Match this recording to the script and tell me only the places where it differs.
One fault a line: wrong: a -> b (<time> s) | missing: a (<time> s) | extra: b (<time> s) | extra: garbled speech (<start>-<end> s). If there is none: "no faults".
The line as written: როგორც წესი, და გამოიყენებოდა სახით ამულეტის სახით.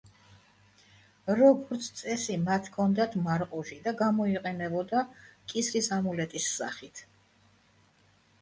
extra: მათ ჰქონდათ მარყუჟი (2.5 s)
wrong: სახით -> კისრის (5.5 s)